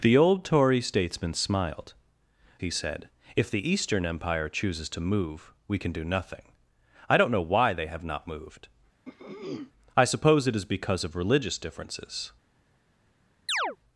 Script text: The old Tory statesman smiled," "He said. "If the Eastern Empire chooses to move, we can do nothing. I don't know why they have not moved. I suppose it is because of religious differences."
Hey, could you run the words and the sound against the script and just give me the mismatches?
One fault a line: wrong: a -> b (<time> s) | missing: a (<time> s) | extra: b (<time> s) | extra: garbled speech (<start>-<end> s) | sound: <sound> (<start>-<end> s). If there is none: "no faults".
sound: throat clearing (9.0-9.7 s)
sound: chirp (13.5-13.8 s)